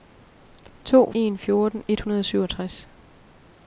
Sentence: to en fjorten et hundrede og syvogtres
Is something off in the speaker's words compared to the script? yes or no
no